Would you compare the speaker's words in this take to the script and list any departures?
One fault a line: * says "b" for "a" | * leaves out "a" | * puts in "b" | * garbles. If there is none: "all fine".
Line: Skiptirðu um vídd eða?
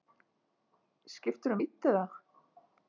all fine